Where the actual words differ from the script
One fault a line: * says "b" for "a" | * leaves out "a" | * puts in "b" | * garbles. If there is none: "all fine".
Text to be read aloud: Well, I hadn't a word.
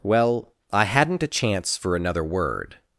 * puts in "chance for another"